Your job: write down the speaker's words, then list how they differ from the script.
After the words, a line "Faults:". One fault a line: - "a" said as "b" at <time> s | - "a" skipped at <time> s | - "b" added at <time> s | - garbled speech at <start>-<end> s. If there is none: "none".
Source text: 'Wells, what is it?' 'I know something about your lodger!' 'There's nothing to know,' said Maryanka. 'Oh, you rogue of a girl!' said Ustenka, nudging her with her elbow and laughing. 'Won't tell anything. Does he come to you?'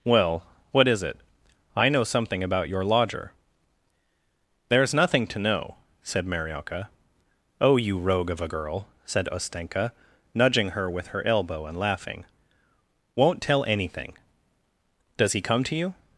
'Well, what is it?' 'I know something about your lodger!' 'There's nothing to know,' said Maryanka. 'Oh, you rogue of a girl!' said Ustenka, nudging her with her elbow and laughing. 'Won't tell anything. Does he come to you?'
Faults:
- "Wells" said as "Well" at 0.0 s